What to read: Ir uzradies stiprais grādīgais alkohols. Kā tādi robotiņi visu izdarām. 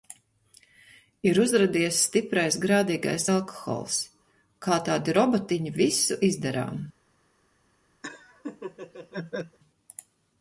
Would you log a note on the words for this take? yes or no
no